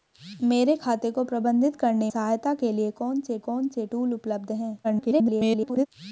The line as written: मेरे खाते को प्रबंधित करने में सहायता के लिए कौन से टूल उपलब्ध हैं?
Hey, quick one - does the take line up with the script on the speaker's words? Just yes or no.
no